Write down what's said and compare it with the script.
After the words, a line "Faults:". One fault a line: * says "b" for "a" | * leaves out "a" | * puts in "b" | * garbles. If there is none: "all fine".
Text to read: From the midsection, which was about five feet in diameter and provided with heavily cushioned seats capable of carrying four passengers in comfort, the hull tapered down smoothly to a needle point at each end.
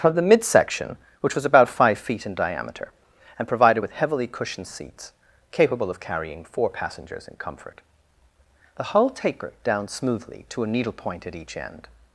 From the midsection, which was about five feet in diameter and provided with heavily cushioned seats capable of carrying four passengers in comfort, the hull tapered down smoothly to a needle point at each end.
Faults:
all fine